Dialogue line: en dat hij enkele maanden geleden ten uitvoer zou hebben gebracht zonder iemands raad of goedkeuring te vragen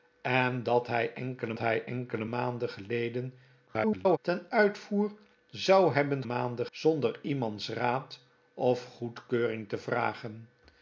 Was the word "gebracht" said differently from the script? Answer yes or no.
yes